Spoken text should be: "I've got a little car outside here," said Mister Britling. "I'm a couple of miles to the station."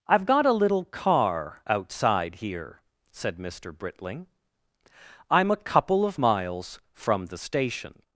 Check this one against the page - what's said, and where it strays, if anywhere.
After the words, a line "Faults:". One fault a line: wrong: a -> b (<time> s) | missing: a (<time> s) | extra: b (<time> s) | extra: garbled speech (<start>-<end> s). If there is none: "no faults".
"I've got a little car outside here," said Mister Britling. "I'm a couple of miles from the station."
Faults:
wrong: to -> from (6.9 s)